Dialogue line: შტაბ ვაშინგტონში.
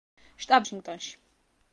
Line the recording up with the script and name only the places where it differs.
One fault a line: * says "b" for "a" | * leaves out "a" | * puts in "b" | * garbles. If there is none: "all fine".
all fine